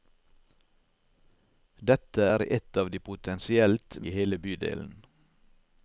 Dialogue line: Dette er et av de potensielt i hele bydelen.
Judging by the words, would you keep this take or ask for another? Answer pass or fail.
pass